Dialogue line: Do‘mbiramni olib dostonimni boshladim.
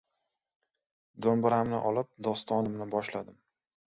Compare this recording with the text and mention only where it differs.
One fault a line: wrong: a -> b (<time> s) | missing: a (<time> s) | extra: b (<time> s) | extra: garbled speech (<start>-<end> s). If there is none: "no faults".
no faults